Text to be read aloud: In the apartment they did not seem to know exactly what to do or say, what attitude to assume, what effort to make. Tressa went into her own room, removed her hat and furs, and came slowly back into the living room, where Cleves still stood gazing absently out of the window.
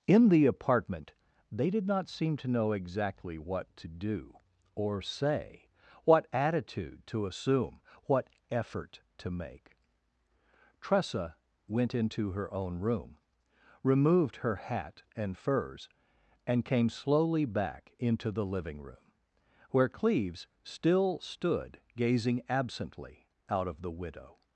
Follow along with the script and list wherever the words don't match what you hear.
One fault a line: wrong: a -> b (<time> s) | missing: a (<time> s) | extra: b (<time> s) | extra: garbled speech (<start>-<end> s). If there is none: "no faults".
wrong: window -> widow (23.9 s)